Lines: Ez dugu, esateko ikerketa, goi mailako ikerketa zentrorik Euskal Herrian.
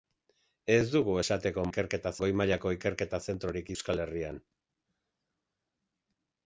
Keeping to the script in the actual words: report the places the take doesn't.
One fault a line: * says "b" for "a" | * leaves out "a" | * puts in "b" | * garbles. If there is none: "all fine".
all fine